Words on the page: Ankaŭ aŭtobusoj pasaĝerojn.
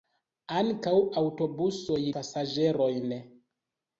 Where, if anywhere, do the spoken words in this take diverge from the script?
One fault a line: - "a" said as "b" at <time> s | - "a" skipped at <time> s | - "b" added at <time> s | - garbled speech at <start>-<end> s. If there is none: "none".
none